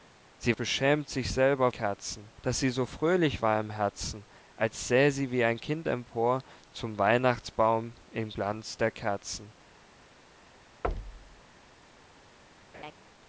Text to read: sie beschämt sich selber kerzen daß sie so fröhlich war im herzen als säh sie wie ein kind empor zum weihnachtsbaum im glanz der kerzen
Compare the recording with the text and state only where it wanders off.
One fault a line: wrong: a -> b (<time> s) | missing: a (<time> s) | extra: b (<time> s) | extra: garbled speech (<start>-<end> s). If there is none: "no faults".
no faults